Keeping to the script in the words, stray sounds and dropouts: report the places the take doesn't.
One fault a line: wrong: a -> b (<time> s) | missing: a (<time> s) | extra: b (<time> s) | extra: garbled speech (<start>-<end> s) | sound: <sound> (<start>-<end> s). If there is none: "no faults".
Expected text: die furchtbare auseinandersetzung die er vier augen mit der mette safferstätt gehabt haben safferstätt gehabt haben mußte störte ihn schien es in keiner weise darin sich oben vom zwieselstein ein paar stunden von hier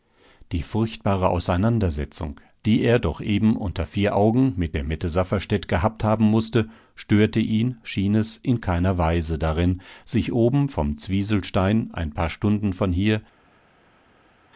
extra: doch eben unter (3.0 s)
missing: safferstätt gehabt haben (6.3 s)